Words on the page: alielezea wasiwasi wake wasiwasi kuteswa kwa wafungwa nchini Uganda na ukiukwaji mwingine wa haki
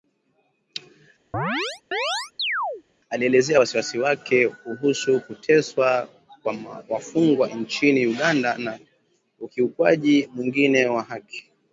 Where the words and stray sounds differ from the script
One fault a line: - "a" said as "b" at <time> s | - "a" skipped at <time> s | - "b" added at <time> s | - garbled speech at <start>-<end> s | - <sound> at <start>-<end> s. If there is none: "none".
- chirp at 1.3-2.8 s
- "wasiwasi" said as "kuhusu" at 4.5 s